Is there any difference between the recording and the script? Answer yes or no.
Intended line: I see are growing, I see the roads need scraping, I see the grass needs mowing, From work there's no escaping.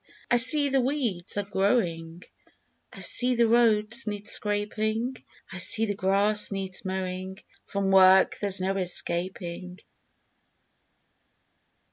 yes